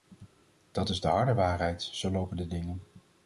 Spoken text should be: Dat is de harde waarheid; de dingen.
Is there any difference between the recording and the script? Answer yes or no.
yes